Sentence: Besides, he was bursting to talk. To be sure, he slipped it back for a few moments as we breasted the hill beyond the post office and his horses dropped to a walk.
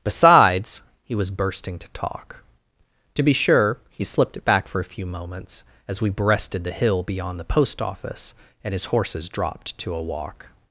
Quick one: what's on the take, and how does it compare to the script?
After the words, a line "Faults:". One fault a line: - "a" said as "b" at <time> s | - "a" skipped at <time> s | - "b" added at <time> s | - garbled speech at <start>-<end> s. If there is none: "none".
Besides, he was bursting to talk. To be sure, he slipped it back for a few moments as we breasted the hill beyond the post office and his horses dropped to a walk.
Faults:
none